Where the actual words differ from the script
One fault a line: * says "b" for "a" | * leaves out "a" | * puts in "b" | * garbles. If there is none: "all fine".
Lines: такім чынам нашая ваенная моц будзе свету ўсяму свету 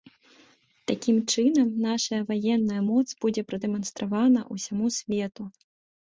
* says "прадэманстравана" for "свету"